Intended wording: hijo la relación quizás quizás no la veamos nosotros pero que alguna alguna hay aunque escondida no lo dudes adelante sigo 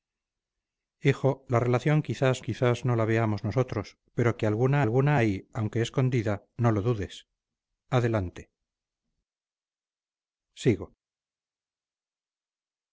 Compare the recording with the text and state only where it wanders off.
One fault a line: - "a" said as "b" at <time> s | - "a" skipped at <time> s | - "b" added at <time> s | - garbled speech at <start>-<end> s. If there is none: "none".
none